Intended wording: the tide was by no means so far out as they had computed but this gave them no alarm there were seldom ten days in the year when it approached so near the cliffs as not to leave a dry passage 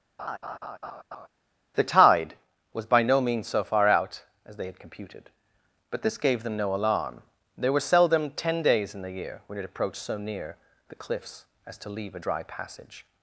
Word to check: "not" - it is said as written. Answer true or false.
false